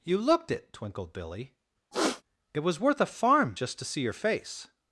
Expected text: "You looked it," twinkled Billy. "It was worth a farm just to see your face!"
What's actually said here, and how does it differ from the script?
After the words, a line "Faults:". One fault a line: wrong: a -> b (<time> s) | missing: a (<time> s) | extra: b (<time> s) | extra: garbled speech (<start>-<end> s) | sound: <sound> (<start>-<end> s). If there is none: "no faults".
"You looked it," twinkled Billy. "It was worth a farm just to see your face!"
Faults:
sound: throat clearing (1.9-2.2 s)